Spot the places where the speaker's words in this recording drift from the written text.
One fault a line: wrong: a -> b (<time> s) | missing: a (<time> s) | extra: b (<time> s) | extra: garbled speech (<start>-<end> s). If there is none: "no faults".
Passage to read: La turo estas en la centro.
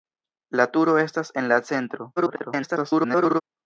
extra: garbled speech (2.2-3.4 s)